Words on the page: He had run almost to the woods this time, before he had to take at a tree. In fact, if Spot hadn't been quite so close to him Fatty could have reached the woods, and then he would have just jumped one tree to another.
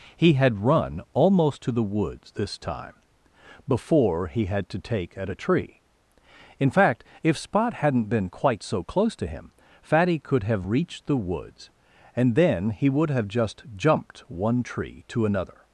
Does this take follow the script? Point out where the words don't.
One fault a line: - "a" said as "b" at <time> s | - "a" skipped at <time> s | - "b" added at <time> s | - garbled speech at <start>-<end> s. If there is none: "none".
none